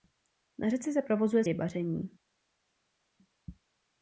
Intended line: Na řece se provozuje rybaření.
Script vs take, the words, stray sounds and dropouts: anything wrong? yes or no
no